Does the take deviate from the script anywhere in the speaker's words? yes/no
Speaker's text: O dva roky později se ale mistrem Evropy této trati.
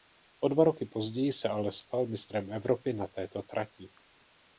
yes